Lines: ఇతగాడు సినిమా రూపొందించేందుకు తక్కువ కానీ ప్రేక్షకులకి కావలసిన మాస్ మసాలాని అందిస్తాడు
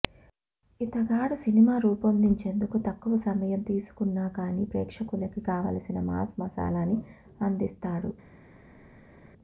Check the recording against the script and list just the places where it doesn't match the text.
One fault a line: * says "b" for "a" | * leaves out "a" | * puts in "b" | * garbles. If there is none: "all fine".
* puts in "సమయం తీసుకున్నా"